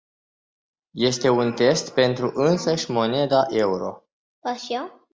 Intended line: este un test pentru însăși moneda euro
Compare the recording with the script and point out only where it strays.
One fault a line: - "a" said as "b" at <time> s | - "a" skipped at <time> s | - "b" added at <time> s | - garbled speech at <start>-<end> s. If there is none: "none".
none